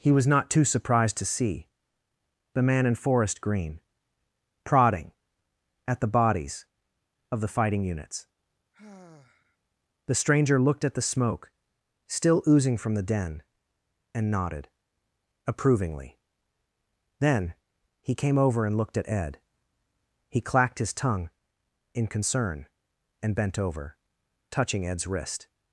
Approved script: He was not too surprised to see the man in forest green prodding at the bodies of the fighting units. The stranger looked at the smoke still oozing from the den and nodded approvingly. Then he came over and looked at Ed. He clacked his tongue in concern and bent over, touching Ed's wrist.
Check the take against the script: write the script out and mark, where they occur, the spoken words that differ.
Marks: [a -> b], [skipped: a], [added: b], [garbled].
He was not too surprised to see the man in forest green prodding at the bodies of the fighting units. The stranger looked at the smoke still oozing from the den and nodded approvingly. Then he came over and looked at Ed. He clacked his tongue in concern and bent over, touching Ed's wrist.